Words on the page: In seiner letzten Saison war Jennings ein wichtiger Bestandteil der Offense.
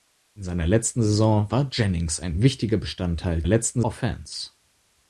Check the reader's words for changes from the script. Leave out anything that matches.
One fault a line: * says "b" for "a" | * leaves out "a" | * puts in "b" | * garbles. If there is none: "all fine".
* says "letzten" for "der"